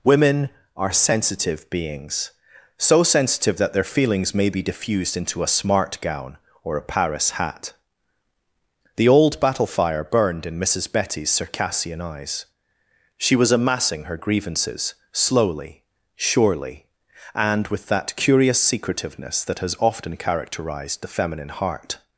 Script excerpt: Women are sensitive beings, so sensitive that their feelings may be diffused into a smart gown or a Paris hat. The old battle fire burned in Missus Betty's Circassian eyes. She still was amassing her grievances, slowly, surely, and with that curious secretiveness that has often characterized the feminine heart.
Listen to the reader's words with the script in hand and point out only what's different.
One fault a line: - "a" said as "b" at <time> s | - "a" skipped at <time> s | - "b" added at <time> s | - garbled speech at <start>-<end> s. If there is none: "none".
- "still" skipped at 13.3 s